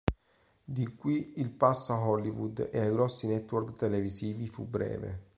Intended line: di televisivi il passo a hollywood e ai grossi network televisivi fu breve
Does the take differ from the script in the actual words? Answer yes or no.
yes